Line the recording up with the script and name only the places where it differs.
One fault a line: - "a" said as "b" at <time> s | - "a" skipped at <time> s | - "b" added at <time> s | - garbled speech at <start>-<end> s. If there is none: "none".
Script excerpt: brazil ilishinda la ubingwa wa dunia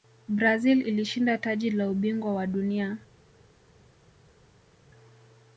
- "taji" added at 1.4 s